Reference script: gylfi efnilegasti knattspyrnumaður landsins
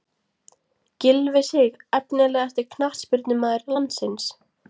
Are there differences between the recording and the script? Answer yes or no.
yes